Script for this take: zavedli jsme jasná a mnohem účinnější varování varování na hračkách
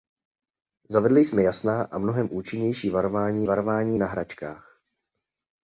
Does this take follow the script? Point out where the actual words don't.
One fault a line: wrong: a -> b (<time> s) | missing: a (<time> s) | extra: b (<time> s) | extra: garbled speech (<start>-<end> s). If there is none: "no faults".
no faults